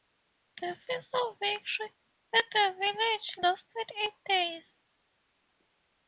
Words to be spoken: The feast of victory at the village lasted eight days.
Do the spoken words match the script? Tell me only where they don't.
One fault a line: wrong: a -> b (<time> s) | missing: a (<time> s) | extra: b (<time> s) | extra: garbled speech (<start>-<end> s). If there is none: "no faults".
no faults